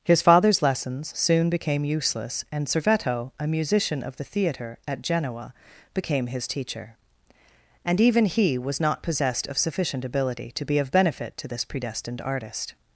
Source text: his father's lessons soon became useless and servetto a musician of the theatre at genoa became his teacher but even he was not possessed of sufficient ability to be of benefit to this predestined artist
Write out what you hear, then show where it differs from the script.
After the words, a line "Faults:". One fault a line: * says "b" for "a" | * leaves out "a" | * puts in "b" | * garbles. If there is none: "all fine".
his father's lessons soon became useless and servetto a musician of the theatre at genoa became his teacher and even he was not possessed of sufficient ability to be of benefit to this predestined artist
Faults:
* says "and" for "but"